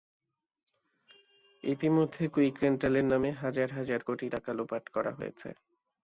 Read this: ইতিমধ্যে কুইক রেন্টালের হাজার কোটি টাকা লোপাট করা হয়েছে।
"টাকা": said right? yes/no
yes